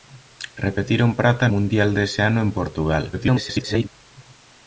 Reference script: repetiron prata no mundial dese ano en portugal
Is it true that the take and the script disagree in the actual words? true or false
true